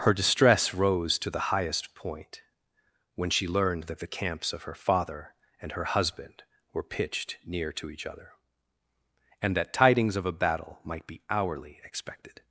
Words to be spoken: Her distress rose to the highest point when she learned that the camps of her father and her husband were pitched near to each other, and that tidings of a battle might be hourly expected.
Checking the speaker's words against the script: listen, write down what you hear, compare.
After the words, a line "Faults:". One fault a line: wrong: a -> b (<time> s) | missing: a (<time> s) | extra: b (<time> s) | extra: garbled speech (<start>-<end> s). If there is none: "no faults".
Her distress rose to the highest point when she learned that the camps of her father and her husband were pitched near to each other, and that tidings of a battle might be hourly expected.
Faults:
no faults